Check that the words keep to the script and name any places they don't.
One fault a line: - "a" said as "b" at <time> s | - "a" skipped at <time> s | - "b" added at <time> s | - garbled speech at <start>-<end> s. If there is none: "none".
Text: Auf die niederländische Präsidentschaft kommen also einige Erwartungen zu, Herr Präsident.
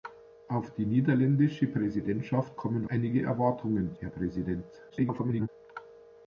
- "also" skipped at 2.9 s
- "zu" skipped at 3.9 s
- garbled speech at 4.9-5.5 s